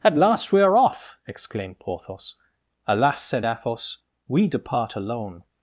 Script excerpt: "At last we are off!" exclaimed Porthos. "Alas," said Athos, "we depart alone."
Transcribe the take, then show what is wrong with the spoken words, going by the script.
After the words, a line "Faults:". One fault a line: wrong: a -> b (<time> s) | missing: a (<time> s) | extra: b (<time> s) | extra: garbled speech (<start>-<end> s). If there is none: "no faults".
"At last we are off!" exclaimed Porthos. "Alas," said Athos, "we depart alone."
Faults:
no faults